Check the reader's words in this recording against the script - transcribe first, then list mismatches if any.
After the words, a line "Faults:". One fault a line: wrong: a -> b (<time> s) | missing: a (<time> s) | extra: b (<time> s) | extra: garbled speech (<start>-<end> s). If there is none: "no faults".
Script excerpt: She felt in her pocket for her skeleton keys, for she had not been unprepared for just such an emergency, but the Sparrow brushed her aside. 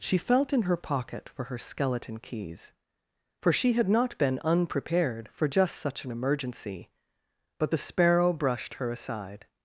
She felt in her pocket for her skeleton keys, for she had not been unprepared for just such an emergency, but the Sparrow brushed her aside.
Faults:
no faults